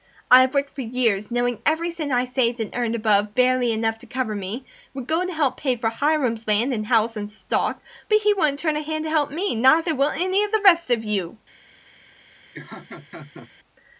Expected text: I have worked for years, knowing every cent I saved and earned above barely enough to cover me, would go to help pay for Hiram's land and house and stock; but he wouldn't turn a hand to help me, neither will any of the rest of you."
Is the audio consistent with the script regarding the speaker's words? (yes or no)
yes